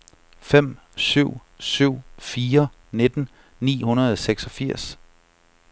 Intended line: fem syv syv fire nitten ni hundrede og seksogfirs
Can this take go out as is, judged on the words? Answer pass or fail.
pass